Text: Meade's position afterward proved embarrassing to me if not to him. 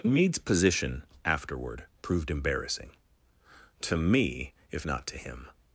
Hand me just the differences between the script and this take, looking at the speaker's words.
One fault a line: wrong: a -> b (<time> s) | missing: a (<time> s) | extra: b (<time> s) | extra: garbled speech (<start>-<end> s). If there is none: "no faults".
no faults